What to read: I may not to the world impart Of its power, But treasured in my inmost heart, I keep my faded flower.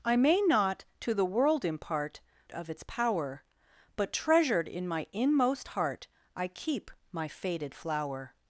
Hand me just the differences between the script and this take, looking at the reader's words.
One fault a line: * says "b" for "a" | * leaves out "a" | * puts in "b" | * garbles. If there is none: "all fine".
all fine